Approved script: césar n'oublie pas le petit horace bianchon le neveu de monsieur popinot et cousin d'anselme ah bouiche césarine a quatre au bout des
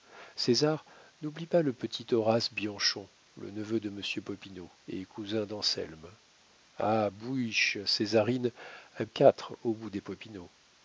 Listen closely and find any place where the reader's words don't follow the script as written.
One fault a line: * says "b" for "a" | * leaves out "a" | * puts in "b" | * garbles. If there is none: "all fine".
all fine